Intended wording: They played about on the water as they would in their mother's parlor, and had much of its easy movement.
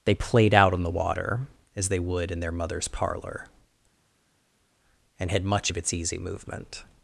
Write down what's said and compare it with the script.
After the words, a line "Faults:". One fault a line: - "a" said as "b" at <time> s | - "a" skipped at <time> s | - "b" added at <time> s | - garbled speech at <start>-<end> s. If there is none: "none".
They played out on the water as they would in their mother's parlor, and had much of its easy movement.
Faults:
- "about" said as "out" at 0.5 s